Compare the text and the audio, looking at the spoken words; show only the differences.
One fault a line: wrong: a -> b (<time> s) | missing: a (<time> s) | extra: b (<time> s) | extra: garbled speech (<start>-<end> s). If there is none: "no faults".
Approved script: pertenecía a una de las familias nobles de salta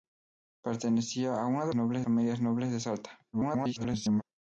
wrong: las -> nobles (1.7 s)
extra: garbled speech (3.3-4.2 s)